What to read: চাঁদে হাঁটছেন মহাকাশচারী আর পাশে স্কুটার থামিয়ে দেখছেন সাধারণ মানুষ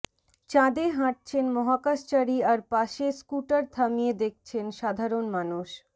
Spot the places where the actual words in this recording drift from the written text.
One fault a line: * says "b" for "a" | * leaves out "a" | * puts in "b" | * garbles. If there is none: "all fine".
all fine